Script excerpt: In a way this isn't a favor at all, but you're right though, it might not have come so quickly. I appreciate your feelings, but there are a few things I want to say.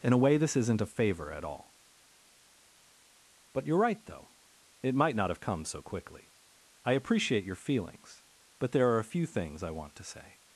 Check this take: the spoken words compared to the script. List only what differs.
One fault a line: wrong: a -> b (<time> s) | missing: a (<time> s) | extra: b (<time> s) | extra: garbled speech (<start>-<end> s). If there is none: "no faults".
no faults